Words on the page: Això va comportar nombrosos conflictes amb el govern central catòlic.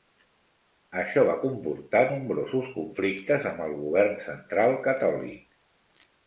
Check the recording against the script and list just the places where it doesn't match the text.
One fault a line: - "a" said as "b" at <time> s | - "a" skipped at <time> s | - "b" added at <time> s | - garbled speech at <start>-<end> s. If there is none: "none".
none